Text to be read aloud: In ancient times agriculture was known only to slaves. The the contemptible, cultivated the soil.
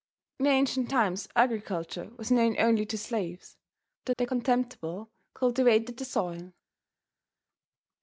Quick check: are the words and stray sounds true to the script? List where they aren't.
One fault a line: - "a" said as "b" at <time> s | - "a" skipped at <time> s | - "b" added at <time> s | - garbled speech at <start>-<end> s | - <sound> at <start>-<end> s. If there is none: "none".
none